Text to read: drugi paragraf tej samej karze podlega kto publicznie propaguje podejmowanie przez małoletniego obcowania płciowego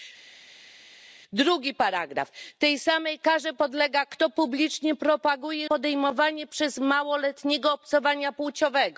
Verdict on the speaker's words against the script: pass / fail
pass